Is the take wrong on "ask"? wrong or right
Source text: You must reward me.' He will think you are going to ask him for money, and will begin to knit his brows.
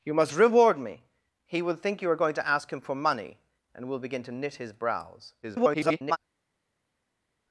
right